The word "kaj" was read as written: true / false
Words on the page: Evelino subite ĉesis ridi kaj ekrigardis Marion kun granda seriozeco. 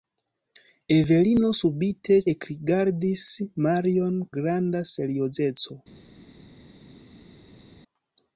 false